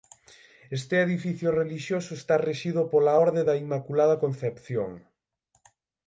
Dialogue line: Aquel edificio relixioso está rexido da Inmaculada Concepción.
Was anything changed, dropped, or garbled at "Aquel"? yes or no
yes